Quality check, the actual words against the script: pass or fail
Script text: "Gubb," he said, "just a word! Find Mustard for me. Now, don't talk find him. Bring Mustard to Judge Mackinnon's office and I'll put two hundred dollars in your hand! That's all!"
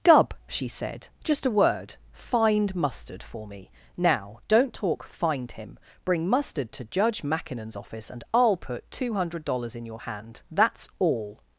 fail